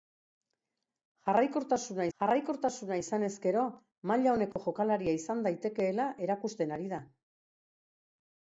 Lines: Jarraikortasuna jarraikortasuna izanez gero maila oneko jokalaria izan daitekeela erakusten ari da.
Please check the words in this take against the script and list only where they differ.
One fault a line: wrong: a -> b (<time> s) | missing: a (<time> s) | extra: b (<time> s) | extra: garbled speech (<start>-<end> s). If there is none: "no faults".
no faults